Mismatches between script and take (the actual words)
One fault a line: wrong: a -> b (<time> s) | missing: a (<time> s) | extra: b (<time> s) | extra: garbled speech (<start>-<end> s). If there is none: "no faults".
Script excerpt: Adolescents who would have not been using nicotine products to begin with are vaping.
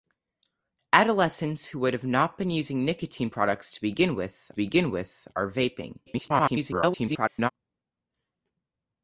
extra: begin with (4.6 s)
extra: garbled speech (6.1-7.5 s)